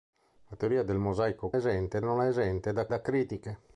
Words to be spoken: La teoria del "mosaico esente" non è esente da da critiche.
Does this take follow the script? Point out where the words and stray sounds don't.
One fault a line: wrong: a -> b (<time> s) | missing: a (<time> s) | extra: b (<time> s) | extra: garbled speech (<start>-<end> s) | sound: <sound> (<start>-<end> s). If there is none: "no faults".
no faults